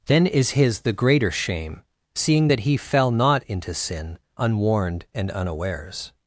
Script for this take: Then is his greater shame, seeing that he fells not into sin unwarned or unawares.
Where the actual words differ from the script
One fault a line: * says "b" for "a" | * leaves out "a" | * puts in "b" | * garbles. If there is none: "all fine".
* puts in "the"
* says "fell" for "fells"
* says "and" for "or"